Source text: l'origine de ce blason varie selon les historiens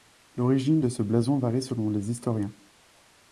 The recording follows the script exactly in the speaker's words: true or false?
true